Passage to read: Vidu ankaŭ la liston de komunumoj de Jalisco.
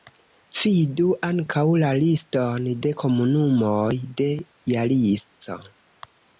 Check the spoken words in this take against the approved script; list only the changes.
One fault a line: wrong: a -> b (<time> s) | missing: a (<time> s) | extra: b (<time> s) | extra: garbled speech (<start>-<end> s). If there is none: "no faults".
no faults